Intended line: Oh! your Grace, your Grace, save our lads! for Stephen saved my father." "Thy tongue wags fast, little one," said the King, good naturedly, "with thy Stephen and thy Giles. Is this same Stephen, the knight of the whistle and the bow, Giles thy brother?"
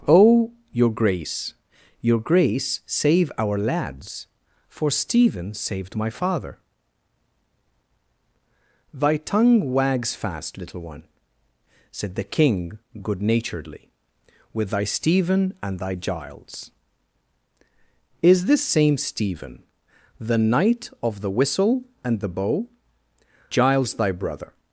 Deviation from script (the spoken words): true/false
false